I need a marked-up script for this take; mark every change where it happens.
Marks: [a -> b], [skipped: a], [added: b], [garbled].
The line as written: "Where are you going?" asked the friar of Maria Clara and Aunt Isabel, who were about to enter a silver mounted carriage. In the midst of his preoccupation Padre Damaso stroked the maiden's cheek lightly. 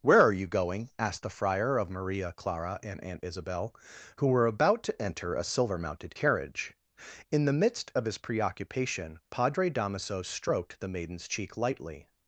"Where are you going?" asked the friar of Maria Clara and Aunt Isabel, who were about to enter a silver mounted carriage. In the midst of his preoccupation Padre Damaso stroked the maiden's cheek lightly.